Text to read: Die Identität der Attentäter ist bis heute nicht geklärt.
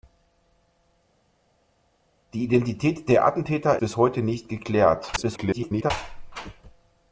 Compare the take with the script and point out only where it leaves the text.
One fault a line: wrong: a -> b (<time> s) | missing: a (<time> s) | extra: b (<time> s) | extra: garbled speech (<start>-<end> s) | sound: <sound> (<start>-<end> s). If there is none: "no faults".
missing: ist (3.8 s)
extra: garbled speech (5.2-5.9 s)